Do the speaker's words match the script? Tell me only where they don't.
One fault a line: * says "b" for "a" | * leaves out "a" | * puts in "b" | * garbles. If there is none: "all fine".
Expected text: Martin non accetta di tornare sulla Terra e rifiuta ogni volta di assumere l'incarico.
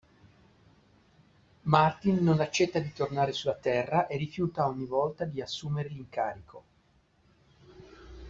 all fine